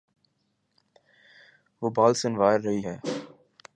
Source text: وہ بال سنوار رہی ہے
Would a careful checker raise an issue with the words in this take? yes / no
no